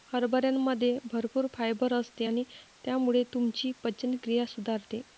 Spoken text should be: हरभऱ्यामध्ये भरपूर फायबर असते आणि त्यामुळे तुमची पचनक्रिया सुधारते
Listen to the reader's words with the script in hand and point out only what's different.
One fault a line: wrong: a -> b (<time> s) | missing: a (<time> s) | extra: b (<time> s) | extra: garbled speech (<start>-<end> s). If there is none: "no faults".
no faults